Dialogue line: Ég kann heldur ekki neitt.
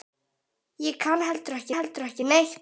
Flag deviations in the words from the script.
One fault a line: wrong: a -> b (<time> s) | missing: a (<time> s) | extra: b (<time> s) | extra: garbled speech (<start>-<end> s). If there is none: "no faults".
extra: heldur ekki (1.7 s)